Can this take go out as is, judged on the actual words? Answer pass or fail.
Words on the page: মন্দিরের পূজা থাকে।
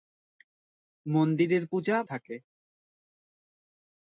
pass